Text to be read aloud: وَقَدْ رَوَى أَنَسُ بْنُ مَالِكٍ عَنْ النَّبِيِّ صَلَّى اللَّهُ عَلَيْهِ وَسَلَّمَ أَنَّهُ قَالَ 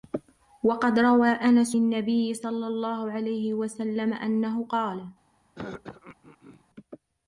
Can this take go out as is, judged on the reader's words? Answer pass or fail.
fail